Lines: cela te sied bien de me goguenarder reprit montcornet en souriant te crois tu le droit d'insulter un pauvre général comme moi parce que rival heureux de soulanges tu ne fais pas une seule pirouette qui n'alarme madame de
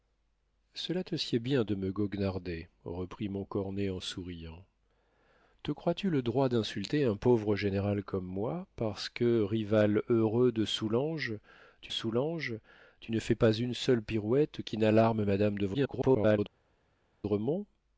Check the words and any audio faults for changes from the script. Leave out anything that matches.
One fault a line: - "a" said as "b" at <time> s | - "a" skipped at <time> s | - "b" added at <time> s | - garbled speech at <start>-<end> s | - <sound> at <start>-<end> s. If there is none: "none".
- "soulanges tu" added at 11.9 s
- garbled speech at 15.7-16.4 s